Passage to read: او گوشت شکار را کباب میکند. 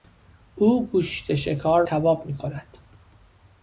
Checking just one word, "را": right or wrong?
wrong